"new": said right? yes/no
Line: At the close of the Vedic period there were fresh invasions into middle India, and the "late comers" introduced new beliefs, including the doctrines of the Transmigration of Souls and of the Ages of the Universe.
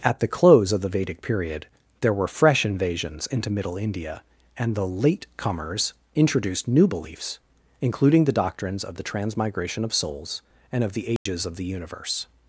yes